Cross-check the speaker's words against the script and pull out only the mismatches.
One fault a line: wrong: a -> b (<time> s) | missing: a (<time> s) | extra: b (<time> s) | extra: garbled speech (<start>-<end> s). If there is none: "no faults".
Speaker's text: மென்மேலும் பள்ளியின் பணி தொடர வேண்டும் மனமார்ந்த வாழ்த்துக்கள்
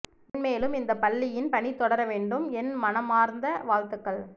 extra: இந்த (0.8 s)
extra: என் (2.5 s)